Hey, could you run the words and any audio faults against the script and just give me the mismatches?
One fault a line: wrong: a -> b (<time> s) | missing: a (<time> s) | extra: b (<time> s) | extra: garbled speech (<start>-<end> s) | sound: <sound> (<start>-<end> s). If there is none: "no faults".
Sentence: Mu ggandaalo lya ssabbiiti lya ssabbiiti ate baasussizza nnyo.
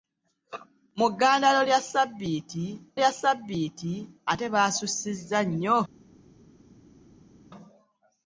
no faults